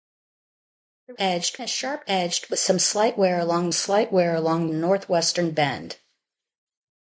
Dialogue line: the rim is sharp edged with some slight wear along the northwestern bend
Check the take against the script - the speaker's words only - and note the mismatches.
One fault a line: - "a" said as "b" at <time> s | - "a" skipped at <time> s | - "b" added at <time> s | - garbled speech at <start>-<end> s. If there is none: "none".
- "rim" said as "edged" at 1.2 s
- "slight wear along" added at 3.7 s